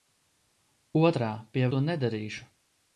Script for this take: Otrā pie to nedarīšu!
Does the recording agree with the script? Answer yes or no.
yes